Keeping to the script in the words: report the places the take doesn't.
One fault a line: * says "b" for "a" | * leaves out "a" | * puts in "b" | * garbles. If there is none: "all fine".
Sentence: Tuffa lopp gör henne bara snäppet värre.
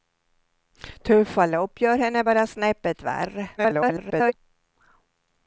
* garbles